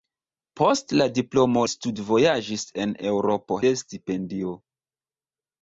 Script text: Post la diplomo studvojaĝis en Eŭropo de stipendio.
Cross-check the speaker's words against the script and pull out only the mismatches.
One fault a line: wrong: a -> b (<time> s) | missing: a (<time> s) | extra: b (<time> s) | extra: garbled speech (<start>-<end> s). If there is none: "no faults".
no faults